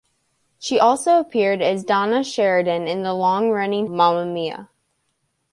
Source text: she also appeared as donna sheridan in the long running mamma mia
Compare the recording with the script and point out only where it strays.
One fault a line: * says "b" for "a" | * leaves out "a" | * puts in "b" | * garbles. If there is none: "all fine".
all fine